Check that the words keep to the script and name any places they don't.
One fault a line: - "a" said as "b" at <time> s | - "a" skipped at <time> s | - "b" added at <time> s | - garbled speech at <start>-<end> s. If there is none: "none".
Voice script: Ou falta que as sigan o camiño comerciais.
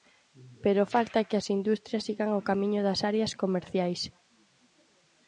- "Ou" said as "Pero" at 0.6 s
- "industrias" added at 1.6 s
- "das áreas" added at 2.9 s